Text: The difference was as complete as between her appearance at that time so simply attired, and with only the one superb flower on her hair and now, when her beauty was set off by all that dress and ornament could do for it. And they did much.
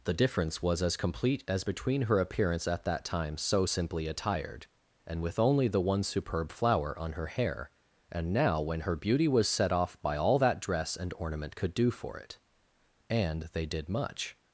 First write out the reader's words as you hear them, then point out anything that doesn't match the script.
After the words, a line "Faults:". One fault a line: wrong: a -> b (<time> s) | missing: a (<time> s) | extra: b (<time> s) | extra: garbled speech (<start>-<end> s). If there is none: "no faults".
The difference was as complete as between her appearance at that time so simply attired, and with only the one superb flower on her hair and now, when her beauty was set off by all that dress and ornament could do for it. And they did much.
Faults:
no faults